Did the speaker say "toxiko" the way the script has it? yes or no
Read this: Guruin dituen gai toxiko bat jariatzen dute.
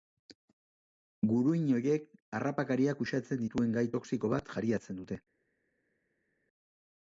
yes